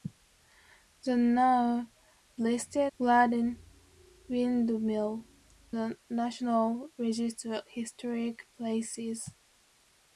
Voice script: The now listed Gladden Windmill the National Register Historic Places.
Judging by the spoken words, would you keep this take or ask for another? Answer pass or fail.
pass